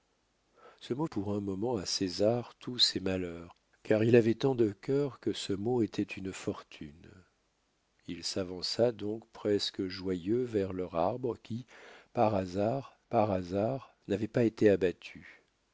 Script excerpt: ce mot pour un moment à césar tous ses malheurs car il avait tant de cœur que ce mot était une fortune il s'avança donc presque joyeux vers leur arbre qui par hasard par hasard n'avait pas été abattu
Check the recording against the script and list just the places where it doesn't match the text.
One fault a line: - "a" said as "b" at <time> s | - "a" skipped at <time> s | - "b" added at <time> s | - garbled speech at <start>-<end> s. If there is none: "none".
none